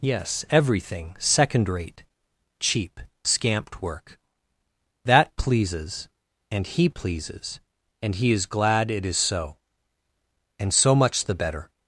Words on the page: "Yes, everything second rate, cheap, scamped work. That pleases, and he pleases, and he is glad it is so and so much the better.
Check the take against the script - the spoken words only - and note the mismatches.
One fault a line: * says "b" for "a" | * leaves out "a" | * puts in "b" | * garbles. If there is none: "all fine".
all fine